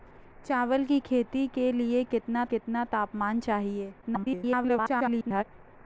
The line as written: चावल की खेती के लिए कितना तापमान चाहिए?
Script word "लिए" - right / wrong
right